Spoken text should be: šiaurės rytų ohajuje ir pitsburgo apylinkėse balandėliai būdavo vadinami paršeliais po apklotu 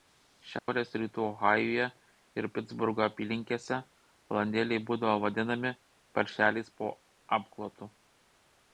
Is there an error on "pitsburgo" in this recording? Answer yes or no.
no